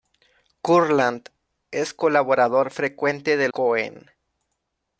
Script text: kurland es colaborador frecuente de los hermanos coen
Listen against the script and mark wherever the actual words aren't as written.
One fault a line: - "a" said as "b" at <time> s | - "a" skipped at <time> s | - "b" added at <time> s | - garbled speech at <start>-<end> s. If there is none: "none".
- "los hermanos" skipped at 3.5 s